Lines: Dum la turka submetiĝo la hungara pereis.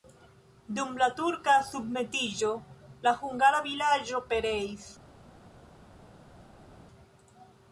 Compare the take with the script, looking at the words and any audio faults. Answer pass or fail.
fail